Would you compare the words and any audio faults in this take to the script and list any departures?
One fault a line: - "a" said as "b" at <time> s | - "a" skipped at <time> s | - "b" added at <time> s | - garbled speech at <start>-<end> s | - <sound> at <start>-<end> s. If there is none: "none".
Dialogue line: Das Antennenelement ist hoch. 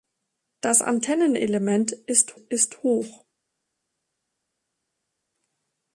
- "ist" added at 2.3 s